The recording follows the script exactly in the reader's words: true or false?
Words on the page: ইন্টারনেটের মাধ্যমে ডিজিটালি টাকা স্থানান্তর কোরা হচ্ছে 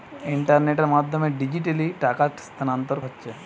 false